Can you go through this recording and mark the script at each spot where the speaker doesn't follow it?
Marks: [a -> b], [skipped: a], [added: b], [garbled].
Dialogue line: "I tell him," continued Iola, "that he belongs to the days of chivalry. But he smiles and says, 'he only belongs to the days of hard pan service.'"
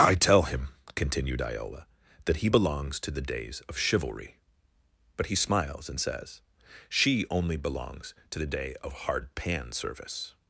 "I tell him," continued Iola, "that he belongs to the days of chivalry. But he smiles and says, ['he -> she] only belongs to the [days -> day] of hard pan service.'"